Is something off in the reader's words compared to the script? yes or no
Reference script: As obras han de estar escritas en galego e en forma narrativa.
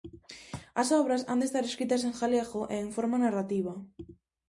no